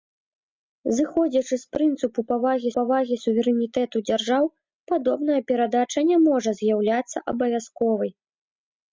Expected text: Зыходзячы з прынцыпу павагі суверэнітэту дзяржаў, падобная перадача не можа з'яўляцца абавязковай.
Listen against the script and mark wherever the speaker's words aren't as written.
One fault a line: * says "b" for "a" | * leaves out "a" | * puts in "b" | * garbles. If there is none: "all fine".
* puts in "павагі"